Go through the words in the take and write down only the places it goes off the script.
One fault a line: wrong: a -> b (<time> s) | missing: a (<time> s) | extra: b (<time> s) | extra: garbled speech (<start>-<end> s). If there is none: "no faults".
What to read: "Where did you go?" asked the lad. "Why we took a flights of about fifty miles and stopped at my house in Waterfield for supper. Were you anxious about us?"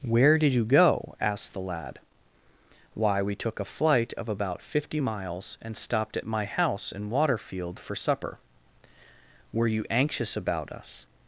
wrong: flights -> flight (3.6 s)